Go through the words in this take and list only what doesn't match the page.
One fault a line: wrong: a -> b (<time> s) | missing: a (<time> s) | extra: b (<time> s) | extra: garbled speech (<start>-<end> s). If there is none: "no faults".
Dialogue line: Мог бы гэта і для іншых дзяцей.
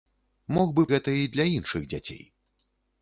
no faults